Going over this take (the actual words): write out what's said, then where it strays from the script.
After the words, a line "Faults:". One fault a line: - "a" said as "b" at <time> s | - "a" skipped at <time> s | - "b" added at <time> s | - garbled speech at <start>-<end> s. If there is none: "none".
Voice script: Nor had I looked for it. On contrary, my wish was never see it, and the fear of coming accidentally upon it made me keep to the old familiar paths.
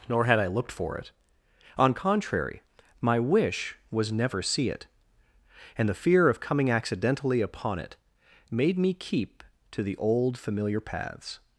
Nor had I looked for it. On contrary, my wish was never see it, and the fear of coming accidentally upon it made me keep to the old familiar paths.
Faults:
none